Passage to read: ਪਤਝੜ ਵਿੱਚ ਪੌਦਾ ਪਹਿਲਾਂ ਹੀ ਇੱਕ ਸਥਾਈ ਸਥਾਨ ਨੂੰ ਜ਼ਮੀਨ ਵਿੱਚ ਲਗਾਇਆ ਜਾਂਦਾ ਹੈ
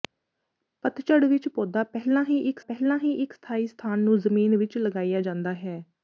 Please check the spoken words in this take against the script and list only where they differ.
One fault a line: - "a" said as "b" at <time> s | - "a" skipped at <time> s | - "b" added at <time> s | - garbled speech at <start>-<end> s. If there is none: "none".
- "ਪਹਿਲਾਂ ਹੀ ਇੱਕ" added at 2.6 s